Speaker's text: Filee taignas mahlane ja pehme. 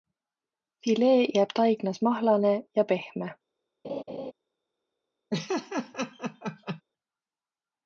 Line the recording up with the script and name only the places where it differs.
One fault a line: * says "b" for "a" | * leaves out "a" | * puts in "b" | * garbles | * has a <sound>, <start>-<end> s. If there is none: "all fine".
* puts in "jääb"
* has a laugh, 3.8-4.3 s
* has a laugh, 5.3-6.8 s